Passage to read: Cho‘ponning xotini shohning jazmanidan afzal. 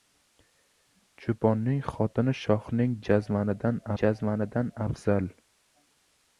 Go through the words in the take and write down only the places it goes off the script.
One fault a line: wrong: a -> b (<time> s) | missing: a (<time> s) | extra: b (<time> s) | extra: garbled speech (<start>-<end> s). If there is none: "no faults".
extra: jazmanidan (4.0 s)